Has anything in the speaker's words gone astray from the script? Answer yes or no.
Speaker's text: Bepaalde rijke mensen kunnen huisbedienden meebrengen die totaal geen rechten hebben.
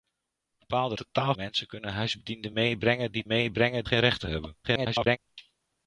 yes